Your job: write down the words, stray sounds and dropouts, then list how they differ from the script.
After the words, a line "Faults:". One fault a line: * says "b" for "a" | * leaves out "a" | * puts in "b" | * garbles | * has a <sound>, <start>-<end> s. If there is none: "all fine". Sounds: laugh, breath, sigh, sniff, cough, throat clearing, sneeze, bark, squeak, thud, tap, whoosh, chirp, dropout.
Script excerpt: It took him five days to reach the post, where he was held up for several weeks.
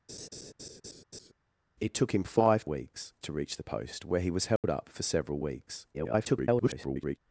It took him five weeks to reach the post, where he was held up for several weeks. [garbled]
Faults:
* has a laugh, 0.1-1.3 s
* says "weeks" for "days"
* has a dropout, 4.6-4.6 s
* garbles